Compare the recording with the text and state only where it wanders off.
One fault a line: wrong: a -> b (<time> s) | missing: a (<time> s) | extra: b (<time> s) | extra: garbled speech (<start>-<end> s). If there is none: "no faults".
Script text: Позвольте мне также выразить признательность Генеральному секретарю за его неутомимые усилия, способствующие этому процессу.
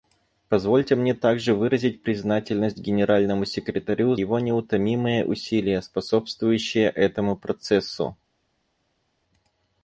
missing: за (4.2 s)